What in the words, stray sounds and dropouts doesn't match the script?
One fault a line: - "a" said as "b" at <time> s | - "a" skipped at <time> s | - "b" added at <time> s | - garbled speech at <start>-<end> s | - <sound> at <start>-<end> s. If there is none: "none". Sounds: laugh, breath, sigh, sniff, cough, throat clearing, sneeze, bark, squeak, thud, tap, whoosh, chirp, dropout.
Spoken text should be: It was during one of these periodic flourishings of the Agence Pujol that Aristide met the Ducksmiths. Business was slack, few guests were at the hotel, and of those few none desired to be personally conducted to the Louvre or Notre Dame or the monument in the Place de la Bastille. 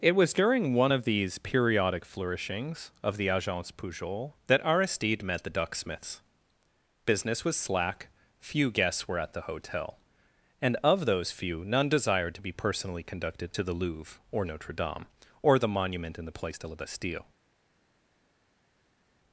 none